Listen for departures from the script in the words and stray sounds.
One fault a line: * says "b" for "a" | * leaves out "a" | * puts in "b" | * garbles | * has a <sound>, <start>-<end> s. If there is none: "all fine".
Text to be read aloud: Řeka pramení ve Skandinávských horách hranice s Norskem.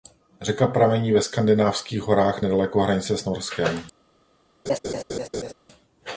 * puts in "nedaleko"
* has a laugh, 4.7-5.5 s